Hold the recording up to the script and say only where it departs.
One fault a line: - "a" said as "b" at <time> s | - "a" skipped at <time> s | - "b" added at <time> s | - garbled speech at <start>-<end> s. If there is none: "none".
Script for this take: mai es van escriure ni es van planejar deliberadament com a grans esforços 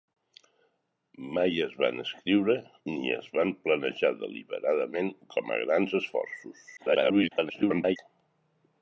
- garbled speech at 6.8-8.0 s